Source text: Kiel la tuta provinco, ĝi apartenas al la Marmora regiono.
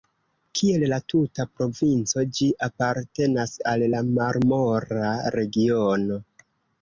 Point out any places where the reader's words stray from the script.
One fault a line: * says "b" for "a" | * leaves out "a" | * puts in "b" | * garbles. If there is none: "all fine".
all fine